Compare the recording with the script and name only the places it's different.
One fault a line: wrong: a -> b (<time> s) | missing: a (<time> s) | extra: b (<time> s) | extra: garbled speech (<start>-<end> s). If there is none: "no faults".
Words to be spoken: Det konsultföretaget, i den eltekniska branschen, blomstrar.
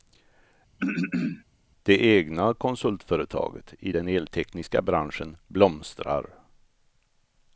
extra: egna (2.2 s)